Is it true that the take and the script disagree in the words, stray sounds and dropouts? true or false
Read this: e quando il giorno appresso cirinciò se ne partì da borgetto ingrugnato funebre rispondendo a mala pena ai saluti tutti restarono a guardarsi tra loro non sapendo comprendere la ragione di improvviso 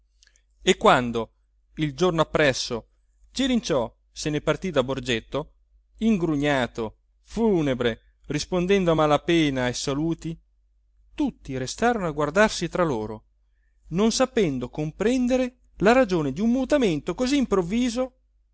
true